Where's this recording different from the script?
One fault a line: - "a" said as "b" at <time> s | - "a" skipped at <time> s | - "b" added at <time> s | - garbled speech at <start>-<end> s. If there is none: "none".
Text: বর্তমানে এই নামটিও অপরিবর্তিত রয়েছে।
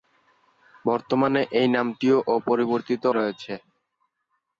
none